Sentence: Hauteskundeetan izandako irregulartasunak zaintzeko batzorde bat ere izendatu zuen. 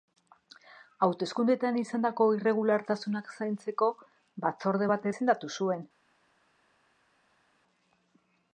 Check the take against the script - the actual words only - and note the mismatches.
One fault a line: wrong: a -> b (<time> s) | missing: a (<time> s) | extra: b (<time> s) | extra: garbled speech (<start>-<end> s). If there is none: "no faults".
missing: ere (5.1 s)